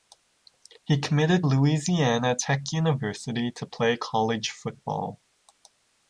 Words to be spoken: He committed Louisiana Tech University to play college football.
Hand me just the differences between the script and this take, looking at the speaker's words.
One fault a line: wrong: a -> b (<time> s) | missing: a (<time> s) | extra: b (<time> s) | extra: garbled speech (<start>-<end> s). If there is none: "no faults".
no faults